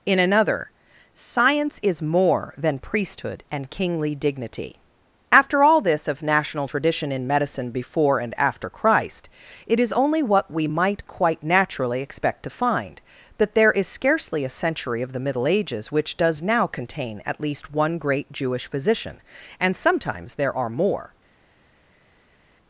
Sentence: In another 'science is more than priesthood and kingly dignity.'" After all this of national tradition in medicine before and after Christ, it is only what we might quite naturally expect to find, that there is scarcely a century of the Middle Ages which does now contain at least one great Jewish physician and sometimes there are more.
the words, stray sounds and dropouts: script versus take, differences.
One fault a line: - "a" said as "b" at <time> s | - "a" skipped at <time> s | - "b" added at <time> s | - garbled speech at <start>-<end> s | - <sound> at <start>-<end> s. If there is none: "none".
none